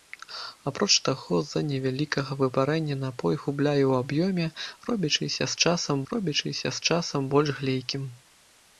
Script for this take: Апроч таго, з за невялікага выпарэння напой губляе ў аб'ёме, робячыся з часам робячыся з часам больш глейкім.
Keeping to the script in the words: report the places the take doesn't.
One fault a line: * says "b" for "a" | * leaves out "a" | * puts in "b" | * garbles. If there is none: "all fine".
all fine